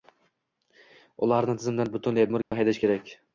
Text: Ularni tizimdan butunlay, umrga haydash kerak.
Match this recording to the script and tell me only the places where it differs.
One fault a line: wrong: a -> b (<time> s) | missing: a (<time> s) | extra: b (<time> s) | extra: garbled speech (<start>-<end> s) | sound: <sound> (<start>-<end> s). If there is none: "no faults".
sound: dropout (2.4-2.5 s)